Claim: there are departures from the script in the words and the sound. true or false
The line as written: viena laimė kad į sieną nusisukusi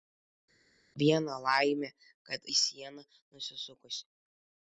false